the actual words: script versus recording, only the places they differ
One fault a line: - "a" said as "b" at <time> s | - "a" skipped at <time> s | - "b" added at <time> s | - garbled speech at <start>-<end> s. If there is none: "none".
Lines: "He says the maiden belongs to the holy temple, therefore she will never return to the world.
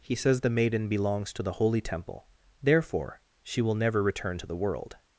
none